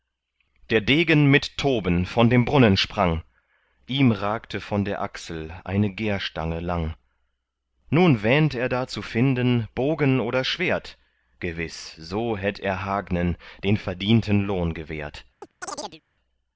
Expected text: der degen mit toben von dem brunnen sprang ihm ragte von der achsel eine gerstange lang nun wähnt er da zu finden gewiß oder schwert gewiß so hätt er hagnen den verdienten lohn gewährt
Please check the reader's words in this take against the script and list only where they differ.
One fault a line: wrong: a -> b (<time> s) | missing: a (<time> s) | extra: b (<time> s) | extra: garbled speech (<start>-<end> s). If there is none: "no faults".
wrong: gewiß -> bogen (9.7 s)